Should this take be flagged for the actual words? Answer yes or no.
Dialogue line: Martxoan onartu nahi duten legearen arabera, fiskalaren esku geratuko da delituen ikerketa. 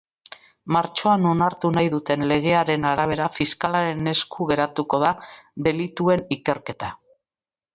no